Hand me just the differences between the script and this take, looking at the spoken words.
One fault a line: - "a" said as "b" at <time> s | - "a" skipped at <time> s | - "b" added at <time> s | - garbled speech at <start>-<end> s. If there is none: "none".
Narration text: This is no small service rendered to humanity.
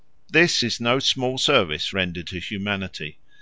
none